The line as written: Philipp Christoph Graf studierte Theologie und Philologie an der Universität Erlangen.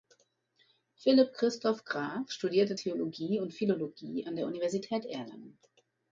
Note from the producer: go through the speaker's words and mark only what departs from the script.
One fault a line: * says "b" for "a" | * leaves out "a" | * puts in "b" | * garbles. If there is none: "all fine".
all fine